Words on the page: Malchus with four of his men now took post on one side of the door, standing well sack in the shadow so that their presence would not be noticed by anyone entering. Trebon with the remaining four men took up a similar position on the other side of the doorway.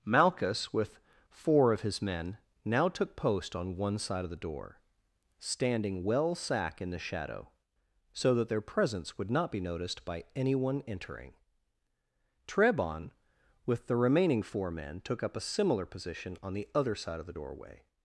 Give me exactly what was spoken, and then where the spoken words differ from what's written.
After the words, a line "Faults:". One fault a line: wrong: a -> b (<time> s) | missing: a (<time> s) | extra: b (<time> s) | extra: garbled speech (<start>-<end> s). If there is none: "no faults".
Malchus with four of his men now took post on one side of the door, standing well sack in the shadow so that their presence would not be noticed by anyone entering. Trebon with the remaining four men took up a similar position on the other side of the doorway.
Faults:
no faults